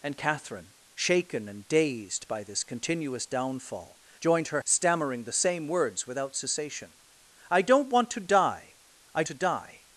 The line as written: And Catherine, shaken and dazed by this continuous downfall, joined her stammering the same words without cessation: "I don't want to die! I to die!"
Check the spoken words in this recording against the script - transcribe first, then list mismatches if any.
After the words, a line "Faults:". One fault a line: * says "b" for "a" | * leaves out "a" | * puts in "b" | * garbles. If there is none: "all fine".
And Catherine, shaken and dazed by this continuous downfall, joined her stammering the same words without cessation: "I don't want to die! I to die!"
Faults:
all fine